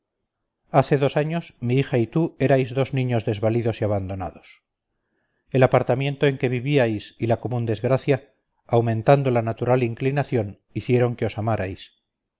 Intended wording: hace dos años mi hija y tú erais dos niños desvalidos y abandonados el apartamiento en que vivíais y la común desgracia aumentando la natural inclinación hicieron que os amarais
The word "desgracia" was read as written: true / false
true